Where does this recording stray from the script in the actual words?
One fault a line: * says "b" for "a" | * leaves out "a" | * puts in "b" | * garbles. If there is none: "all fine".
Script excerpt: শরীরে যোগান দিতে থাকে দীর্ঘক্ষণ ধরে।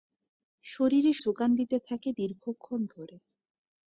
all fine